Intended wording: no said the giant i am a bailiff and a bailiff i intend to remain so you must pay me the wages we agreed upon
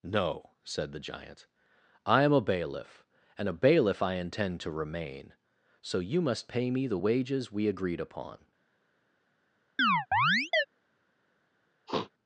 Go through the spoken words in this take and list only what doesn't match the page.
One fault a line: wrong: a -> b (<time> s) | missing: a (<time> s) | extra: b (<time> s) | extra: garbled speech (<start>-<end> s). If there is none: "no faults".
no faults